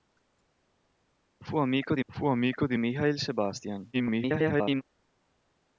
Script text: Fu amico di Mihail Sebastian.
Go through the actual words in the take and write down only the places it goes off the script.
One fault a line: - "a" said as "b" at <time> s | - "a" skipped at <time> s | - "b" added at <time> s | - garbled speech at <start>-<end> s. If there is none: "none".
- "fu amico di" added at 2.1 s
- garbled speech at 3.9-4.8 s